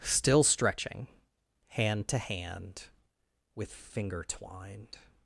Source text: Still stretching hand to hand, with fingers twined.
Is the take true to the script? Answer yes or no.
no